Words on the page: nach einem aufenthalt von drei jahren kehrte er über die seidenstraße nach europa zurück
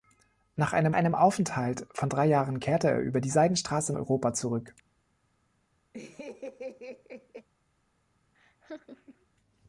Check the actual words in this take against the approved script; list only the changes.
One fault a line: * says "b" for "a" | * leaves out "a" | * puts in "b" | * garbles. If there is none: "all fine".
* puts in "einem"
* leaves out "nach"